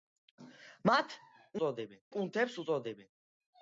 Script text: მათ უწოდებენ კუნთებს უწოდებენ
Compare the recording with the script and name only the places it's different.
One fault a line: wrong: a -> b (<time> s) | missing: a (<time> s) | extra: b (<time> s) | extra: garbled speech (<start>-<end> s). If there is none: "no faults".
no faults